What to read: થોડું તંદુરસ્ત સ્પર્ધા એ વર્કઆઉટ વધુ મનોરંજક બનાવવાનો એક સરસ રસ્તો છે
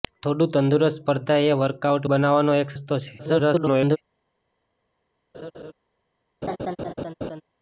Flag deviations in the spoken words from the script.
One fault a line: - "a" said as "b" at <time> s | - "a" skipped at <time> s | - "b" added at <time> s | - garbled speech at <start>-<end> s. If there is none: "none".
- "વધુ મનોરંજક" skipped at 2.1 s
- "સરસ" skipped at 2.8 s
- garbled speech at 3.2-4.0 s